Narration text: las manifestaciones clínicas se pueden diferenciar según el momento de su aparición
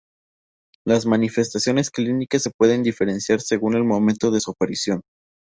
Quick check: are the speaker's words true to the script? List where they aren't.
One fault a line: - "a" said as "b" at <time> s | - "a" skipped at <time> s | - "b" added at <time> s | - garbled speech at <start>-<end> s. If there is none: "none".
none